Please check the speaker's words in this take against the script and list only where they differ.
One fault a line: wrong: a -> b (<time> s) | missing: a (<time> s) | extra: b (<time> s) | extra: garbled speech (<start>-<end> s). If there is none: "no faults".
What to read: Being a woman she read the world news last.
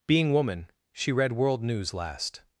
missing: a (0.3 s)
missing: the (1.3 s)